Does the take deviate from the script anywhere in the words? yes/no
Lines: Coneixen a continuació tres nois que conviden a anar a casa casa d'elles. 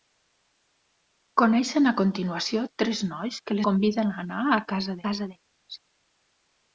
no